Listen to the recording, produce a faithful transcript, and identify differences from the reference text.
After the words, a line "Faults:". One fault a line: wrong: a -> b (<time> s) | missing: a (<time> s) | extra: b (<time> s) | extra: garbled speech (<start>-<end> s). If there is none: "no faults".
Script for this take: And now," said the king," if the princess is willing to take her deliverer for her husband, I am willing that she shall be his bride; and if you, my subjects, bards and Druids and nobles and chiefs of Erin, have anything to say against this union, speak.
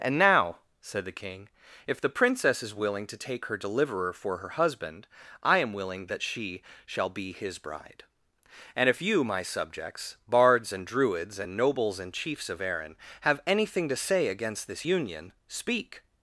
And now," said the king," if the princess is willing to take her deliverer for her husband, I am willing that she shall be his bride; and if you, my subjects, bards and Druids and nobles and chiefs of Erin, have anything to say against this union, speak.
Faults:
no faults